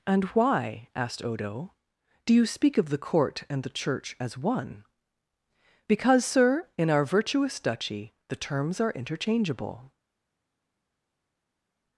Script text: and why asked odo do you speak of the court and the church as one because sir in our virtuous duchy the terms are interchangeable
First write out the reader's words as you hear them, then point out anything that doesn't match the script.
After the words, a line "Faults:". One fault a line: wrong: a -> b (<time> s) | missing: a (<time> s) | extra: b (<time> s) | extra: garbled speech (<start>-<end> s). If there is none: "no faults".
and why asked odo do you speak of the court and the church as one because sir in our virtuous duchy the terms are interchangeable
Faults:
no faults